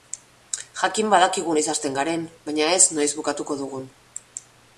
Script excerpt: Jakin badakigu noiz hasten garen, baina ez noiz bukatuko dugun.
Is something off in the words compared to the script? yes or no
no